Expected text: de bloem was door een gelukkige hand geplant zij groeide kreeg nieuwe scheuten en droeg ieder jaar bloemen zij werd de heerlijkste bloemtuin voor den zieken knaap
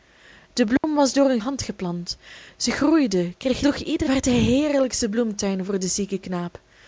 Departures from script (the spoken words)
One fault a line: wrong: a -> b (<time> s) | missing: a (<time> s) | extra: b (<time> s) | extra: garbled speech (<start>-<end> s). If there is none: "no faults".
missing: gelukkige (1.4 s)
missing: nieuwe scheuten en (3.6 s)
missing: jaar bloemen zij (4.1 s)